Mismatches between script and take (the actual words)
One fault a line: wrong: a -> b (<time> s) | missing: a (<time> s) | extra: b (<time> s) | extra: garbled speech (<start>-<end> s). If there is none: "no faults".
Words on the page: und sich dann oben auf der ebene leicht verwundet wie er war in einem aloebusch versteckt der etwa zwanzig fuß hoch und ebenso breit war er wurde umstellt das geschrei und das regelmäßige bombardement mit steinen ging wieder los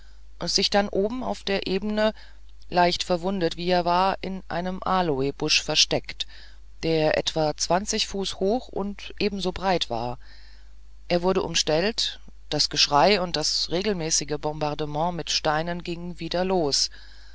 no faults